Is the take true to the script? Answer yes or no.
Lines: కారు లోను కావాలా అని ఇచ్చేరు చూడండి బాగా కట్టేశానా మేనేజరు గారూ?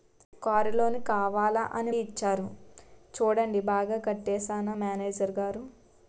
yes